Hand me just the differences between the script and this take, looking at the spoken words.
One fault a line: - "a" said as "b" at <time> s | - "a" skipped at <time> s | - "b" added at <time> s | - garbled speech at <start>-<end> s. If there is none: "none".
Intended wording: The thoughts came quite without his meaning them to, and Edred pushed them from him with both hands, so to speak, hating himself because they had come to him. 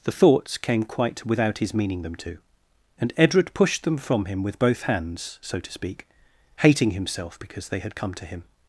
none